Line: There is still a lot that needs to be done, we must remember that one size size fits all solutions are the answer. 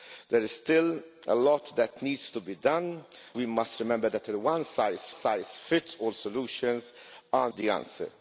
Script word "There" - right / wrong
right